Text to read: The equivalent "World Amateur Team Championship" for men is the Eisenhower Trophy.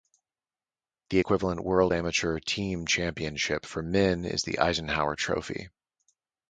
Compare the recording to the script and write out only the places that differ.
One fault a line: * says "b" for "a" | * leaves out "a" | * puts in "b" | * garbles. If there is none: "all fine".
all fine